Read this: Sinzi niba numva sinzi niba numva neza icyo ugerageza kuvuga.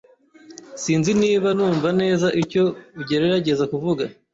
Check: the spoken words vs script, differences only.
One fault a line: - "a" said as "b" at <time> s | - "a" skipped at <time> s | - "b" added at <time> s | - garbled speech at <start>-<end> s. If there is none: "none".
- "sinzi niba numva" skipped at 1.9 s